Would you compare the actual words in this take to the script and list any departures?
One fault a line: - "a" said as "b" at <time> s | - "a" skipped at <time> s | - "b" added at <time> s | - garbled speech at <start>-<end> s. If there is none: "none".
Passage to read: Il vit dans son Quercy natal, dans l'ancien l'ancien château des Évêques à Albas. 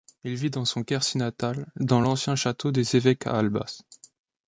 - "l'ancien" skipped at 2.3 s